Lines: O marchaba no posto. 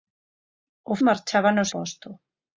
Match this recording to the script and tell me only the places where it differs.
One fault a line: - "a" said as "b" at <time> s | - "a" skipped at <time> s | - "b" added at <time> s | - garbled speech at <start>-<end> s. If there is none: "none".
none